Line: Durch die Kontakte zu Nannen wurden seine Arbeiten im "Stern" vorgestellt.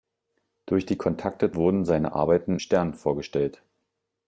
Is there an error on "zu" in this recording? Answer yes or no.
yes